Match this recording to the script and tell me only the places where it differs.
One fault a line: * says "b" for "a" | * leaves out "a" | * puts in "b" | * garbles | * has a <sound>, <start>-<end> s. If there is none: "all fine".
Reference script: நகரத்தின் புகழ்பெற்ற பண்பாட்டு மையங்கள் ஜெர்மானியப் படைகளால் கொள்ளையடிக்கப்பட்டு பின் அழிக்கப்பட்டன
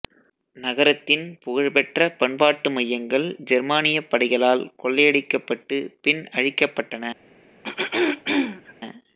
* has a throat clearing, 7.6-8.7 s